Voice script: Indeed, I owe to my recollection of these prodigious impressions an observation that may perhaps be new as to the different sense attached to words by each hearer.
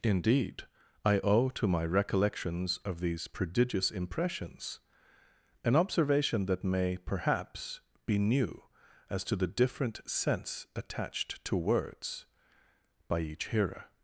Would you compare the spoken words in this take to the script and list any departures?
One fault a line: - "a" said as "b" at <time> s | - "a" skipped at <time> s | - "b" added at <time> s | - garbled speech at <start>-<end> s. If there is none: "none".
- "recollection" said as "recollections" at 1.9 s